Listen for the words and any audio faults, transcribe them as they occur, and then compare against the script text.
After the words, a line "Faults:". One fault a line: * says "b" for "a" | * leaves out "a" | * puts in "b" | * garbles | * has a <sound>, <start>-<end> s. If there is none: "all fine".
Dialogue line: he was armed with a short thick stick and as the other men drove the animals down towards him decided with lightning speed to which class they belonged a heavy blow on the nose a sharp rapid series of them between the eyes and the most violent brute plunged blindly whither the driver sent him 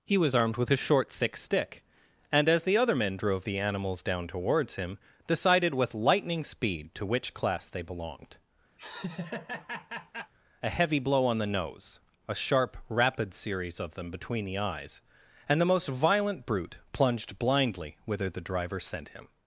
he was armed with a short thick stick and as the other men drove the animals down towards him decided with lightning speed to which class they belonged a heavy blow on the nose a sharp rapid series of them between the eyes and the most violent brute plunged blindly whither the driver sent him
Faults:
* has a laugh, 8.8-10.3 s